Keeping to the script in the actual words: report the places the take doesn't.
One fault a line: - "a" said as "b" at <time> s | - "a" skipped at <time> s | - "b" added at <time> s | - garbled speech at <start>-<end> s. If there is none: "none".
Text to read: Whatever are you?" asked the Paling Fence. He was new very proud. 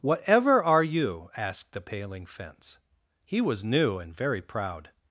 - "and" added at 4.0 s